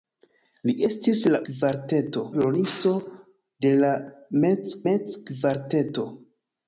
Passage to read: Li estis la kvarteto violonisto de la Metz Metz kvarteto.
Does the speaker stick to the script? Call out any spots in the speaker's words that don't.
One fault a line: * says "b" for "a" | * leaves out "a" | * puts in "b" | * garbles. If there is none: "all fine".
all fine